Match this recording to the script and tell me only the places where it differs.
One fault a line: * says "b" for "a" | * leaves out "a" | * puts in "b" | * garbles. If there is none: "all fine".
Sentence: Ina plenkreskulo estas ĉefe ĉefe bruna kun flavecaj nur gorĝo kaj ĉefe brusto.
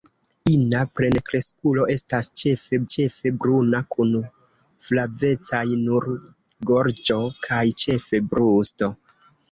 all fine